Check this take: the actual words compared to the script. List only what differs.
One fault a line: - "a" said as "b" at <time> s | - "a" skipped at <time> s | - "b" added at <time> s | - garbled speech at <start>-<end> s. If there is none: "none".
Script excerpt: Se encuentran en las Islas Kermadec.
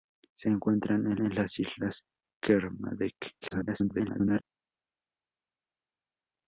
- "en" added at 1.2 s
- garbled speech at 3.4-4.4 s